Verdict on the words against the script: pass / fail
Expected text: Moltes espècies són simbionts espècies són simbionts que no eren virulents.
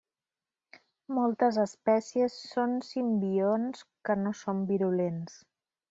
fail